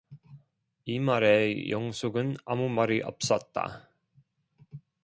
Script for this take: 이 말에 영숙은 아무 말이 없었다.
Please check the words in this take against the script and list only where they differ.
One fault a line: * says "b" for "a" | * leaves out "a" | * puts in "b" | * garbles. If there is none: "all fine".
all fine